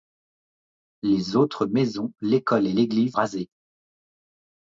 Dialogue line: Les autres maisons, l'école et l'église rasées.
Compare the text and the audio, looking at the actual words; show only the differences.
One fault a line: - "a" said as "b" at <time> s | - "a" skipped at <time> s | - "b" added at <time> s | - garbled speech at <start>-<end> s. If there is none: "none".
none